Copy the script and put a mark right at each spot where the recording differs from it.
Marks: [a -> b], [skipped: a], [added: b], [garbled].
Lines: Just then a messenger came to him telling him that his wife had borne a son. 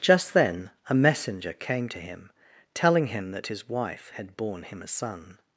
Just then a messenger came to him telling him that his wife had borne [added: him] a son.